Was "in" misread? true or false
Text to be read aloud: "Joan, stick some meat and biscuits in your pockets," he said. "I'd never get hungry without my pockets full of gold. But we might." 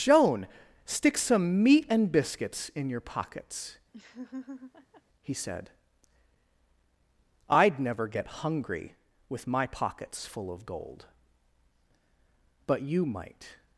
false